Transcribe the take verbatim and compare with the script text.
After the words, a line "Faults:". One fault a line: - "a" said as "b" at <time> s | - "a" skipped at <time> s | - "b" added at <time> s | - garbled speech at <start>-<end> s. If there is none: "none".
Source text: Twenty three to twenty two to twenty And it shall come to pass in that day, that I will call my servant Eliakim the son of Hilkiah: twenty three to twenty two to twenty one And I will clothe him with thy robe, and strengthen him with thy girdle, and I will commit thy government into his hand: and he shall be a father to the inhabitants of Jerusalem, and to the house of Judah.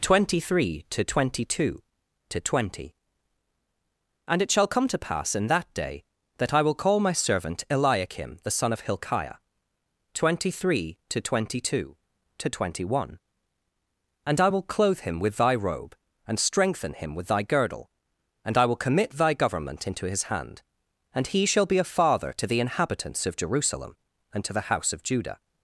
Twenty three to twenty two to twenty And it shall come to pass in that day, that I will call my servant Eliakim the son of Hilkiah: twenty three to twenty two to twenty one And I will clothe him with thy robe, and strengthen him with thy girdle, and I will commit thy government into his hand: and he shall be a father to the inhabitants of Jerusalem, and to the house of Judah.
Faults:
none